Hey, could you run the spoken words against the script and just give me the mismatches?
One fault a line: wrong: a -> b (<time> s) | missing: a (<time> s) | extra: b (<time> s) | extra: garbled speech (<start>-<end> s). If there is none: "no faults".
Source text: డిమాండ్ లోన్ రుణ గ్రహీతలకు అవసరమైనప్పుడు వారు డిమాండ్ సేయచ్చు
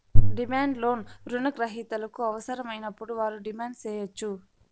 no faults